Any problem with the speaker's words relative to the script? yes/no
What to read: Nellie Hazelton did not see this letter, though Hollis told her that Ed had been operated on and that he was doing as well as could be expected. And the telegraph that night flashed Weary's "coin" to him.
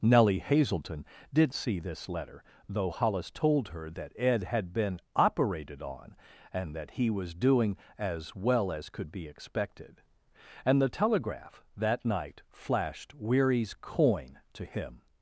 yes